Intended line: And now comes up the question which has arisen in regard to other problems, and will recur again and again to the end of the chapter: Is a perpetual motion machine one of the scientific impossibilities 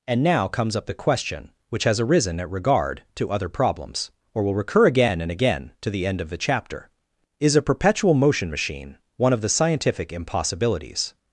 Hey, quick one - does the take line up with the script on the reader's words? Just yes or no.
no